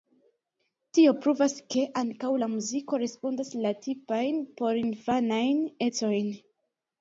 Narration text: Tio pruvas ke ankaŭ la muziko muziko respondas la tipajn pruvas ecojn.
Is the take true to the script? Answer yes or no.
no